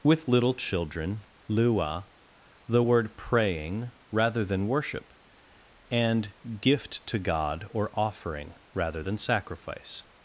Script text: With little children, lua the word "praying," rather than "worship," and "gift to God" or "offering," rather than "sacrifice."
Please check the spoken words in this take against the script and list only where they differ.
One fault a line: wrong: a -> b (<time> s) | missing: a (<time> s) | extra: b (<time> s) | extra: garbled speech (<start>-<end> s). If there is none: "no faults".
no faults